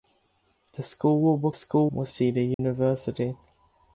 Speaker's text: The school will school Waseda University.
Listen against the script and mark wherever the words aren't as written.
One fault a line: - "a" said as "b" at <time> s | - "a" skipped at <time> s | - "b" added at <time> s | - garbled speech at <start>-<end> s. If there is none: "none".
none